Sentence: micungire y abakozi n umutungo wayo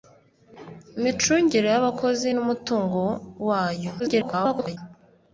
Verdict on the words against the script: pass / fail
fail